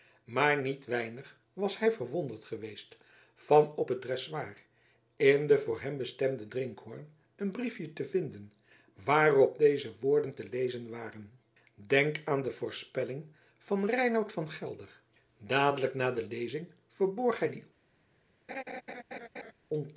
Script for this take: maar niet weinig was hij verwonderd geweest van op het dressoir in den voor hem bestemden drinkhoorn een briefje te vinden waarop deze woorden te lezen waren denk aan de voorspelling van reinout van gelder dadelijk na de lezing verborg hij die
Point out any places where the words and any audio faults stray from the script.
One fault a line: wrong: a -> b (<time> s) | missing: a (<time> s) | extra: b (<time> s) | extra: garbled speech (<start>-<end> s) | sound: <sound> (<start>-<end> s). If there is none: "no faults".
sound: laugh (18.5-19.5 s)